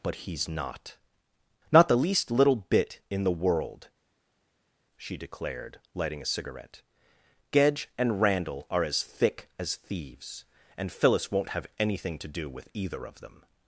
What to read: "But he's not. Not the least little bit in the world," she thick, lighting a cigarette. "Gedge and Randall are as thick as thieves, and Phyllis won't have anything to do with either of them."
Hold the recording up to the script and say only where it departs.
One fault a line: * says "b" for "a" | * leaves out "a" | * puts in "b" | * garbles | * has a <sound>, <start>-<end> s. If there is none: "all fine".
* says "declared" for "thick"